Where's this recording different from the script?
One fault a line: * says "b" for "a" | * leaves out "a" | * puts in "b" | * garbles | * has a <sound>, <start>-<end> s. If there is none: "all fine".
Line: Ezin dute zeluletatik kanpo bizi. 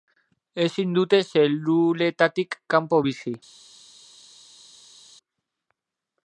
all fine